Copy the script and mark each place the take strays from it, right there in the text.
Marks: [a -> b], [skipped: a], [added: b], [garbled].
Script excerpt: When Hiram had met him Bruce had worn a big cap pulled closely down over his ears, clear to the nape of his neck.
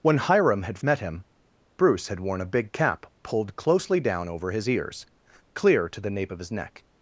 When Hiram had met him Bruce had worn a big cap pulled closely down over his ears, clear to the nape of his neck.